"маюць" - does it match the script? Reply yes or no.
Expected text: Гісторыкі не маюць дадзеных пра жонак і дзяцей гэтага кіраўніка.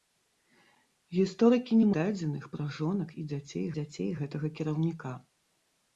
no